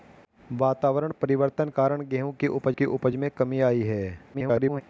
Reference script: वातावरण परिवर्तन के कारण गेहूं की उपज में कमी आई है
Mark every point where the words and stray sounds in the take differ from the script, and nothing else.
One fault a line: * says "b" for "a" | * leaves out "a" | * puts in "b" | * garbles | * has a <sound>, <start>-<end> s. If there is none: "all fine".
* leaves out "के"
* puts in "की उपज"
* garbles